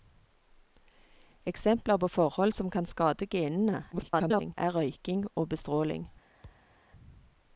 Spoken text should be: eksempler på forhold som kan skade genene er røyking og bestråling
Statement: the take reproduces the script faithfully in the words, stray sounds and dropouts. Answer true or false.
false